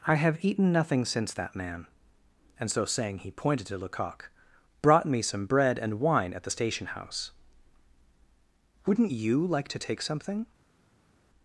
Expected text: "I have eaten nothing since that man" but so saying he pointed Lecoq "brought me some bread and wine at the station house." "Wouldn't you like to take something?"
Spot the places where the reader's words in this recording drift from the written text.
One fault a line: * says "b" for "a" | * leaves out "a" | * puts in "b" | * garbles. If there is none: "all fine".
* says "and" for "but"
* puts in "to"